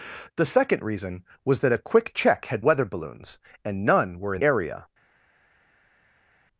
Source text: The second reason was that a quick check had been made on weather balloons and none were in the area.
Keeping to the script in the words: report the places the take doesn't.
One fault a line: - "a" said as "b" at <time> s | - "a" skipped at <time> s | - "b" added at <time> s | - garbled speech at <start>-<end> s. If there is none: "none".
- "been made on" skipped at 2.6 s
- "the" skipped at 4.4 s